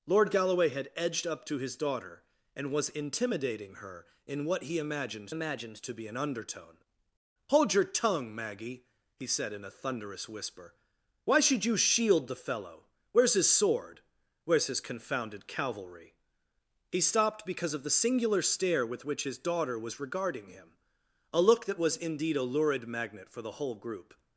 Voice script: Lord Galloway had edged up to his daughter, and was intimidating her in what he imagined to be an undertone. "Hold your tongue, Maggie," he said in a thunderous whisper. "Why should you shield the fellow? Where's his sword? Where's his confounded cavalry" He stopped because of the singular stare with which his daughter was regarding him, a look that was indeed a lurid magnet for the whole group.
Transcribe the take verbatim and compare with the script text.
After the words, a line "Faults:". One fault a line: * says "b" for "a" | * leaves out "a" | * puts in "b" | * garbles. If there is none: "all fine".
Lord Galloway had edged up to his daughter, and was intimidating her in what he imagined imagined to be an undertone. "Hold your tongue, Maggie," he said in a thunderous whisper. "Why should you shield the fellow? Where's his sword? Where's his confounded cavalry" He stopped because of the singular stare with which his daughter was regarding him, a look that was indeed a lurid magnet for the whole group.
Faults:
* puts in "imagined"